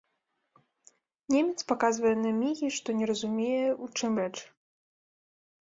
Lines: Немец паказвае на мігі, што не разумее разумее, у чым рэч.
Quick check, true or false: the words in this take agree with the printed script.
false